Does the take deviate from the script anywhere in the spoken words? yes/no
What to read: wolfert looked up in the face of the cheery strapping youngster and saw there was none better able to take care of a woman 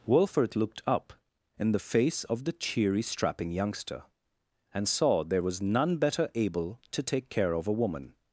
no